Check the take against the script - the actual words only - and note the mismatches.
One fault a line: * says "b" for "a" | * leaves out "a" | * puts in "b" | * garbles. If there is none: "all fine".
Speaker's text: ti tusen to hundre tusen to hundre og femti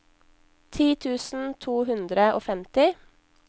* leaves out "tusen to hundre"